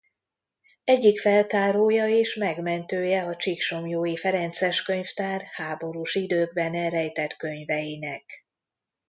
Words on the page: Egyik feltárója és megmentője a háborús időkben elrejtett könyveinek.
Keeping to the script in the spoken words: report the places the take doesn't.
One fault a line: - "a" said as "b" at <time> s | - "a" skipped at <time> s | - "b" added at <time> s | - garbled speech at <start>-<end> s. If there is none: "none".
- "csíksomlyói ferences könyvtár" added at 3.4 s